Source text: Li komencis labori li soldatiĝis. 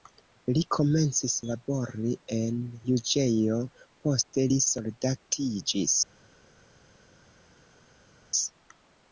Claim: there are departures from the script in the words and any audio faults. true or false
true